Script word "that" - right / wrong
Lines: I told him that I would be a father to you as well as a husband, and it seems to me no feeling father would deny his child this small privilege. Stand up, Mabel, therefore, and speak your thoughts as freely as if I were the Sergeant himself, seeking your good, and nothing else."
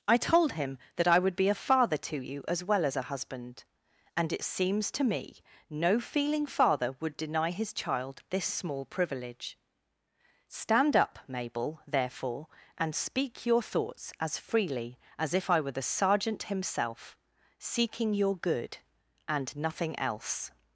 right